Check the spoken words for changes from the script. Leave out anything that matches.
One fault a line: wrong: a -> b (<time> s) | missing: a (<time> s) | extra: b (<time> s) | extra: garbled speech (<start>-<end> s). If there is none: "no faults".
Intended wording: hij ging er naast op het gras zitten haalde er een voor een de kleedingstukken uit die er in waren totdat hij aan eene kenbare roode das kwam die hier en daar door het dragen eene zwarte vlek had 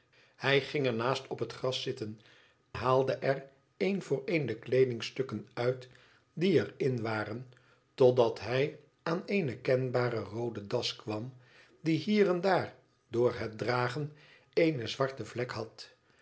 no faults